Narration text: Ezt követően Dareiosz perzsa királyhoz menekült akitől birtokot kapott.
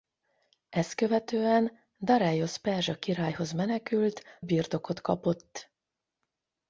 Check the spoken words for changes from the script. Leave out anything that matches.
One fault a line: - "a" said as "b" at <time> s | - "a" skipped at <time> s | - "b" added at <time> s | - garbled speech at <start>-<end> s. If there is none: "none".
- "akitől" skipped at 4.2 s